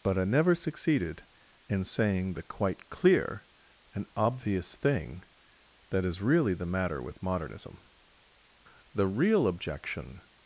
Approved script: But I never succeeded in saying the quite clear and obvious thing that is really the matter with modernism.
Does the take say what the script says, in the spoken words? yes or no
no